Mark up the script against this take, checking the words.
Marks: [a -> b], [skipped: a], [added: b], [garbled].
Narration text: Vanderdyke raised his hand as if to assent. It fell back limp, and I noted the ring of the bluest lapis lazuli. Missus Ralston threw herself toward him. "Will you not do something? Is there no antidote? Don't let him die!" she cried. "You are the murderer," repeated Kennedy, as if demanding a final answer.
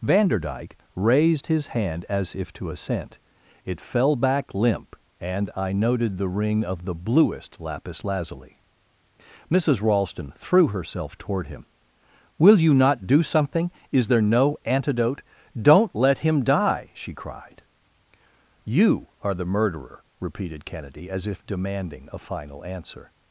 Vanderdyke raised his hand as if to assent. It fell back limp, and I noted the ring of the bluest lapis lazuli. Missus Ralston threw herself toward him. "Will you not do something? Is there no antidote? Don't let him die!" she cried. "You are the murderer," repeated Kennedy, as if demanding a final answer.